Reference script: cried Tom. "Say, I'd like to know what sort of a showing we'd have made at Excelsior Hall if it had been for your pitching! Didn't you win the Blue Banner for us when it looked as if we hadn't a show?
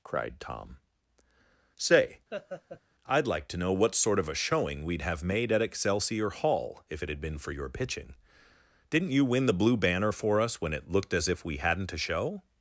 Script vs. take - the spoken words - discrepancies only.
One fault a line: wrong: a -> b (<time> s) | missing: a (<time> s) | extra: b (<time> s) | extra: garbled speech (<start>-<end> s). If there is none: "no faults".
no faults